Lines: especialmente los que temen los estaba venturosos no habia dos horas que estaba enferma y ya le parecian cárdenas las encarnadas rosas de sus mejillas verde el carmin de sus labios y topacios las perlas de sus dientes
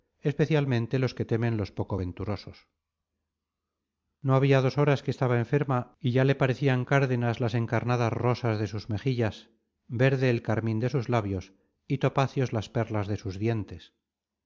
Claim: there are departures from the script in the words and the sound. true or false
true